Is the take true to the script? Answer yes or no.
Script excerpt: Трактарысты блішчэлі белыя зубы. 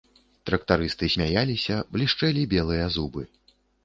no